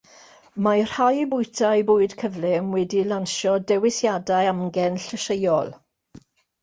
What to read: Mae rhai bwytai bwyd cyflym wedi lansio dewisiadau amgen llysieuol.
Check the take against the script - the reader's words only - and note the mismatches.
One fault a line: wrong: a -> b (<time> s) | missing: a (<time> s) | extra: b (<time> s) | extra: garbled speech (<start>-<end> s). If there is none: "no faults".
no faults